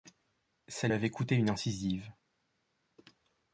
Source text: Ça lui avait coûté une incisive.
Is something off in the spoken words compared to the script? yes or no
yes